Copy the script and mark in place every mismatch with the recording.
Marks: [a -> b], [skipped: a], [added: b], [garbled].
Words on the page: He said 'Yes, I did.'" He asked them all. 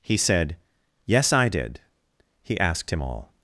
He said 'Yes, I did.'" He asked [them -> him] all.